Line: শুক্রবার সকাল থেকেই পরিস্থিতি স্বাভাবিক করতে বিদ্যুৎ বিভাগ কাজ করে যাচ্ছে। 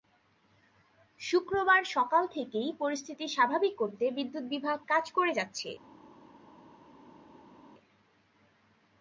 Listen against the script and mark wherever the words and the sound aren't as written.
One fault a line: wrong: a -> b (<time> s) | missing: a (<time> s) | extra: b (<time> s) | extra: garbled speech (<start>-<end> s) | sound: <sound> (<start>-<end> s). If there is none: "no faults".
no faults